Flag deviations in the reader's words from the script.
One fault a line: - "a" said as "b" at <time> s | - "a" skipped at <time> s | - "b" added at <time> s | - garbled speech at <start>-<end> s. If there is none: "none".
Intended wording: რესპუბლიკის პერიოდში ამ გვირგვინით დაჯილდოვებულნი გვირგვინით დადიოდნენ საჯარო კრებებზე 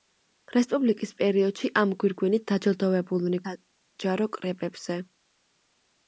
- "გვირგვინით დადიოდნენ" skipped at 3.4 s